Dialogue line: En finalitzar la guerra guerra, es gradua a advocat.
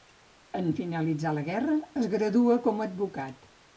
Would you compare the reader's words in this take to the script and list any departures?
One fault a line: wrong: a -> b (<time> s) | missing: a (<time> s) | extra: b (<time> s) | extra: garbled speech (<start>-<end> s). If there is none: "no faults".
missing: guerra (1.8 s)
extra: com (2.7 s)